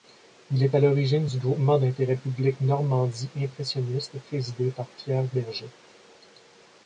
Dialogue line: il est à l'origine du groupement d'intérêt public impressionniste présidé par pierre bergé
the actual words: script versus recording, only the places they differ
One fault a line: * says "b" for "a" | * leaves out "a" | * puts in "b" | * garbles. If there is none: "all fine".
* puts in "normandie"